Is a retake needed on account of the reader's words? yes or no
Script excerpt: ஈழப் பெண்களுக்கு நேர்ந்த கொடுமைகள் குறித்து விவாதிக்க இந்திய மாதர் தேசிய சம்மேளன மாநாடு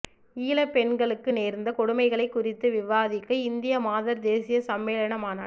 no